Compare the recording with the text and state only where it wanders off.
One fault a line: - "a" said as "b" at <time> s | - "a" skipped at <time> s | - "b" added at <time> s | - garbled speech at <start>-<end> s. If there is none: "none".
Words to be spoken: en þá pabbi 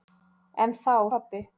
none